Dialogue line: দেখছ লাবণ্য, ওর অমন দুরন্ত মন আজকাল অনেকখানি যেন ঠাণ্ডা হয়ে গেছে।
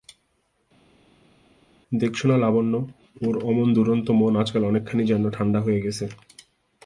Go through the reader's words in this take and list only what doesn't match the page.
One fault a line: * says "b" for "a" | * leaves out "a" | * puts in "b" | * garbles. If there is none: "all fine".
* puts in "না"